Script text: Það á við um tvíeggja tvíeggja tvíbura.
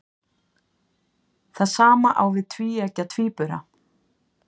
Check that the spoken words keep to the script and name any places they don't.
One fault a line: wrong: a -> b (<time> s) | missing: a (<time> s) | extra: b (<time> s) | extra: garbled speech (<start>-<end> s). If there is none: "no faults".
extra: sama (1.7 s)
missing: tvíeggja (3.1 s)